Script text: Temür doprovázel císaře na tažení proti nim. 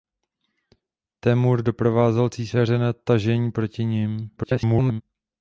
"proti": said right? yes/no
yes